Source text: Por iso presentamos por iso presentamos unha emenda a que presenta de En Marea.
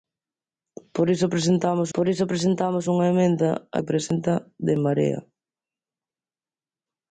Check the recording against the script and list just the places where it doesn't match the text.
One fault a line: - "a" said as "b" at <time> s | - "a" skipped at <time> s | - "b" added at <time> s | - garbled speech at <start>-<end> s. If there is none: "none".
none